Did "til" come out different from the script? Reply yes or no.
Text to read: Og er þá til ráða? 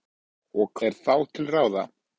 no